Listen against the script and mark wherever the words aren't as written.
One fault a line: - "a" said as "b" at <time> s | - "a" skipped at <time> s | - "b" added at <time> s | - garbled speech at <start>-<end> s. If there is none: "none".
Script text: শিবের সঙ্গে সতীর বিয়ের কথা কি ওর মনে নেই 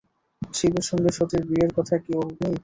- "মনে" skipped at 2.3 s